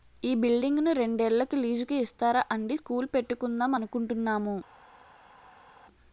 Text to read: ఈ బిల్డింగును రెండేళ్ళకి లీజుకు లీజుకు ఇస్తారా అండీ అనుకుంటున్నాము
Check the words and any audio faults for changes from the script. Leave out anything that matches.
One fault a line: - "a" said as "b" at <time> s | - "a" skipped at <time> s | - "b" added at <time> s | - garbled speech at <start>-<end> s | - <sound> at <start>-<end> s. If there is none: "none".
- "లీజుకు" skipped at 1.9 s
- "స్కూలు పెట్టుకుందాం" added at 2.7 s